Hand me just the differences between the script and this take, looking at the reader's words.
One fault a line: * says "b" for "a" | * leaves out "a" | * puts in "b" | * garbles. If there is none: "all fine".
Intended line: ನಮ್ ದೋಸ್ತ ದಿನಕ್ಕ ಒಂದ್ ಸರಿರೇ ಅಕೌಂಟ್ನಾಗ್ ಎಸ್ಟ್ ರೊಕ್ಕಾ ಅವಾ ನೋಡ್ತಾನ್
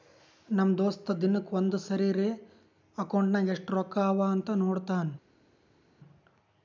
* puts in "ಅಂತ್"